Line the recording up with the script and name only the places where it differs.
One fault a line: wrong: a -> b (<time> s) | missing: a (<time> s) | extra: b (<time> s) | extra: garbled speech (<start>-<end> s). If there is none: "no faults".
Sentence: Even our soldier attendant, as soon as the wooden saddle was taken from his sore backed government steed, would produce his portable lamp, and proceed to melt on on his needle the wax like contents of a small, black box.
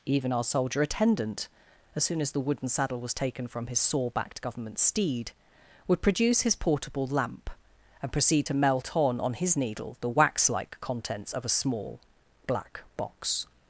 no faults